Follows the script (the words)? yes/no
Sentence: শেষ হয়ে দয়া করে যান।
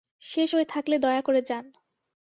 no